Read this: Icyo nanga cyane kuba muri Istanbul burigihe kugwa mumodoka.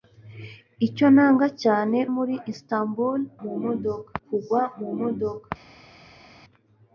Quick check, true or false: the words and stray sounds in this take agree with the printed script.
false